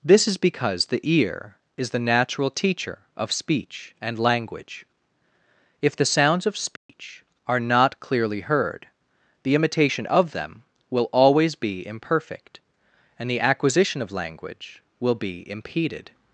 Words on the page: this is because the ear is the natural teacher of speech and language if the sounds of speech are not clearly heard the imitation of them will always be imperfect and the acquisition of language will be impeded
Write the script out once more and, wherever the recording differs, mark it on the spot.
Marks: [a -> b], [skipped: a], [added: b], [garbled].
this is because the ear is the natural teacher of speech and language if the sounds of speech are not clearly heard the imitation of them will always be imperfect and the acquisition of language will be impeded